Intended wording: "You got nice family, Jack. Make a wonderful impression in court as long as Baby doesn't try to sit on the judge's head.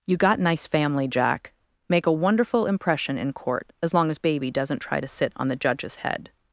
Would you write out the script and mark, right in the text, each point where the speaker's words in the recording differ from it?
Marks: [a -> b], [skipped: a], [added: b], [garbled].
"You got nice family, Jack. Make a wonderful impression in court as long as Baby doesn't try to sit on the judge's head.